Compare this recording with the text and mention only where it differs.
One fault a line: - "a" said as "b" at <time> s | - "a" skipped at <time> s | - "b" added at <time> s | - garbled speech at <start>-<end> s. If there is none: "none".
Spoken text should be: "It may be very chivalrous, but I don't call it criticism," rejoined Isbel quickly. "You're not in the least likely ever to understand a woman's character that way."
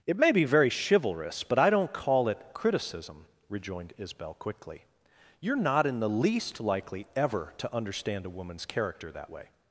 none